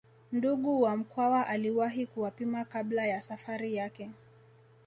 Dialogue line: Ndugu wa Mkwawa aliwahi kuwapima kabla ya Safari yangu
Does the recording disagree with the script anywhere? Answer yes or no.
yes